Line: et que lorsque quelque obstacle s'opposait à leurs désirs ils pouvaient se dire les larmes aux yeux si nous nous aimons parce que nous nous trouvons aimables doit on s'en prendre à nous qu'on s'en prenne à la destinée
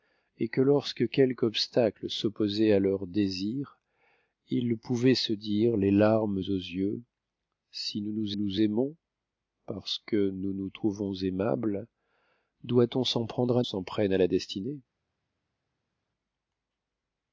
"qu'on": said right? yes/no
no